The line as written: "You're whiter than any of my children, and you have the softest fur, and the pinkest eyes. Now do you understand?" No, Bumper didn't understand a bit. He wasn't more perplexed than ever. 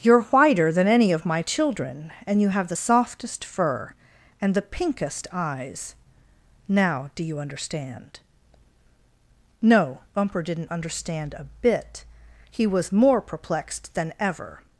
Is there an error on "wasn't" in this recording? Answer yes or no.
yes